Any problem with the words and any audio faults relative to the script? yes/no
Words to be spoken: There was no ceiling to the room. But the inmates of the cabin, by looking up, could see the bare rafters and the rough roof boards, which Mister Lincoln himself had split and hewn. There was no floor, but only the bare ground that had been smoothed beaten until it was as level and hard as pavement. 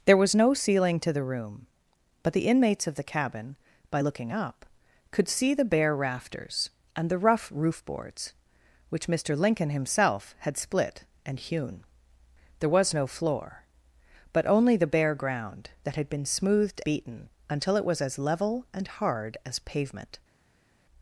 no